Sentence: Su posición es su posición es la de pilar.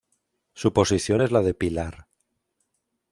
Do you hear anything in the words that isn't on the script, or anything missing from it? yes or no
yes